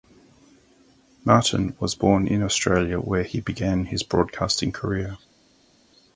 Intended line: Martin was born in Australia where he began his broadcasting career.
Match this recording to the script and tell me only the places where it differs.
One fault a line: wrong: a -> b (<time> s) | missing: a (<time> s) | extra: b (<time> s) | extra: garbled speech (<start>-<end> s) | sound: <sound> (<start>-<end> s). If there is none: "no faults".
no faults